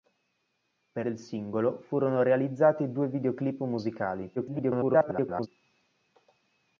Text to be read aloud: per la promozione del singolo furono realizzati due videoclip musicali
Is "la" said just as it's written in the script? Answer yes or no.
no